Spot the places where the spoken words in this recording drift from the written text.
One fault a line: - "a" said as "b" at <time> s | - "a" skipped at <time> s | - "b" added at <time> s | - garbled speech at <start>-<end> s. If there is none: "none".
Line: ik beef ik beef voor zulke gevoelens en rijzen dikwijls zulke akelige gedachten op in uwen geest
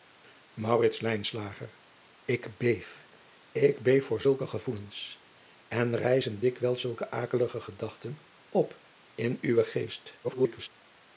- garbled speech at 10.2-10.7 s